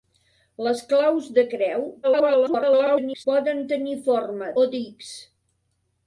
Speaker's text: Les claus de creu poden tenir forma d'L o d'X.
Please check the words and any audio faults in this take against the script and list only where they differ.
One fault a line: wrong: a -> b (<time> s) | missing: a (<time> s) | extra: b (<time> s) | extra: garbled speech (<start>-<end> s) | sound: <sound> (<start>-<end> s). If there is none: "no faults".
extra: garbled speech (2.0-3.3 s)
missing: d'L (4.5 s)